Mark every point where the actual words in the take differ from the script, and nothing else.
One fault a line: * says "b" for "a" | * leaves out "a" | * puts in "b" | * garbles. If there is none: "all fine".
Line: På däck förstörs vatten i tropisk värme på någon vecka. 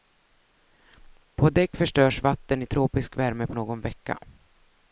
all fine